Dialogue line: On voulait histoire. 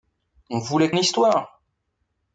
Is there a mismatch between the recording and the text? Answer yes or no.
no